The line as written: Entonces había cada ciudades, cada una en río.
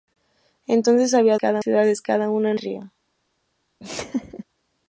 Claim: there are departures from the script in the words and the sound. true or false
true